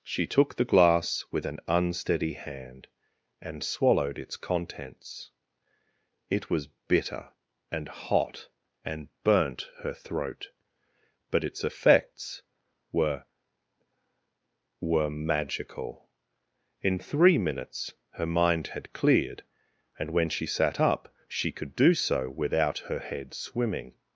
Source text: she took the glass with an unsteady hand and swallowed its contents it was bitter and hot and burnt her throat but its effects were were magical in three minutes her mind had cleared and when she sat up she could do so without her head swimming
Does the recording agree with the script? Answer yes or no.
yes